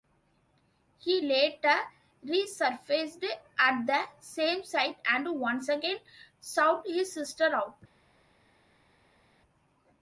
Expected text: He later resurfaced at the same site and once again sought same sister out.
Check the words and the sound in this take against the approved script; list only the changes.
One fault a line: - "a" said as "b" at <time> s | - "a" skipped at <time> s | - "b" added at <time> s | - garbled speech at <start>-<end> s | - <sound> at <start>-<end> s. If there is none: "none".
- "same" said as "his" at 6.9 s